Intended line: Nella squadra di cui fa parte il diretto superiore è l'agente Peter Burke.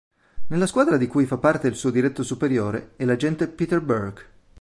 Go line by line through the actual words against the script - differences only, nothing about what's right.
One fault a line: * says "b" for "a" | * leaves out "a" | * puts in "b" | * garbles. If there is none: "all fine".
* puts in "suo"